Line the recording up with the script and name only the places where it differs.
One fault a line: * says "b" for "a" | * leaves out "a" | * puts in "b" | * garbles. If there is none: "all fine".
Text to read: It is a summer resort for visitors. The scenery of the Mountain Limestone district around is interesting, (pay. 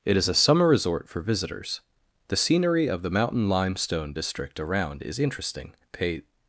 all fine